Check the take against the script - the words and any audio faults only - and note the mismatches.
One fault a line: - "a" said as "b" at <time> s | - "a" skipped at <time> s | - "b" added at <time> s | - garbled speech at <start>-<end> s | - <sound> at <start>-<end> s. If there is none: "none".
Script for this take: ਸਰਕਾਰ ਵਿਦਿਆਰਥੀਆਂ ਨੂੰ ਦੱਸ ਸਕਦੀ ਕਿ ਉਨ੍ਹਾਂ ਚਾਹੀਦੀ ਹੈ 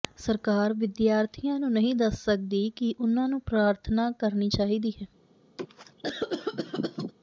- "ਨਹੀਂ" added at 1.7 s
- "ਨੂੰ ਪ੍ਰਾਰਥਨਾ ਕਰਨੀ" added at 3.3 s
- cough at 5.6-7.1 s